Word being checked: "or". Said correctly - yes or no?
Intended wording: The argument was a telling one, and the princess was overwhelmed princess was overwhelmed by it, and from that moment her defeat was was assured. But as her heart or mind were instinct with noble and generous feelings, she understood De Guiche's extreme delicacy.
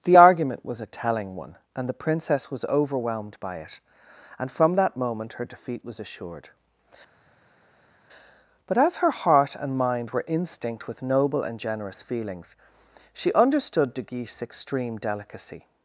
no